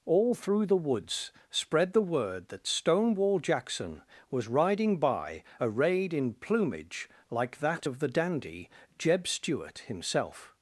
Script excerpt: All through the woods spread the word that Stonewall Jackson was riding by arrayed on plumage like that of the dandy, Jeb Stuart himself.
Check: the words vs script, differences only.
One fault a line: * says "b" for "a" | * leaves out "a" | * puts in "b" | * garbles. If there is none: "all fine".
* says "in" for "on"